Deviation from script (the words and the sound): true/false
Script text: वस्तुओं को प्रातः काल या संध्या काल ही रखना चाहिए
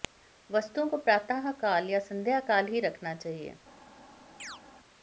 true